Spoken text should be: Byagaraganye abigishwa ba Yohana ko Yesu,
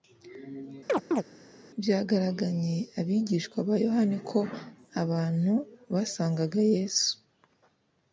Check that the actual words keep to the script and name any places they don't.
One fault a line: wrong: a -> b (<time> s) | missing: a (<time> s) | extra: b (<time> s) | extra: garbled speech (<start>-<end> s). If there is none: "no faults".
extra: abantu basangaga (5.0 s)